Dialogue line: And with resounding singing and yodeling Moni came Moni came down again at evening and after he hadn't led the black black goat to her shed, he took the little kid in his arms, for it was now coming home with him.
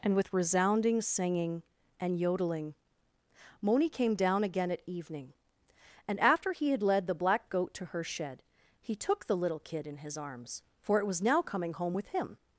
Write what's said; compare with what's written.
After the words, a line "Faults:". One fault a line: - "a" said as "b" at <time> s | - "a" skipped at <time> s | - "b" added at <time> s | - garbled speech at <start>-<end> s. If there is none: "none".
And with resounding singing and yodeling Moni came down again at evening and after he had led the black goat to her shed, he took the little kid in his arms, for it was now coming home with him.
Faults:
- "Moni came" skipped at 4.2 s
- "hadn't" said as "had" at 6.7 s
- "black" skipped at 7.5 s